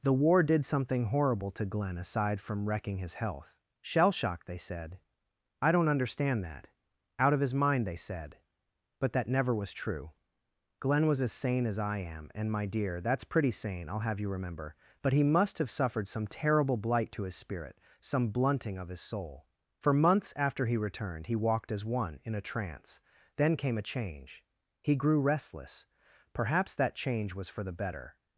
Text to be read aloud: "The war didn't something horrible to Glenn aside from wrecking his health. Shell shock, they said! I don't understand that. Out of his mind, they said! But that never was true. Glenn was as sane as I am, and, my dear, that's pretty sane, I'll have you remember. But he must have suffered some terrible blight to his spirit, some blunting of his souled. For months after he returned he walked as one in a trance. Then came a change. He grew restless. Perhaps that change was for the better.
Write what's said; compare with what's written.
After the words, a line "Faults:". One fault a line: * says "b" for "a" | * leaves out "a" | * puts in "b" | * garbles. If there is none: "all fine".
"The war did something horrible to Glenn aside from wrecking his health. Shell shock, they said! I don't understand that. Out of his mind, they said! But that never was true. Glenn was as sane as I am, and, my dear, that's pretty sane, I'll have you remember. But he must have suffered some terrible blight to his spirit, some blunting of his soul. For months after he returned he walked as one in a trance. Then came a change. He grew restless. Perhaps that change was for the better.
Faults:
* says "did" for "didn't"
* says "soul" for "souled"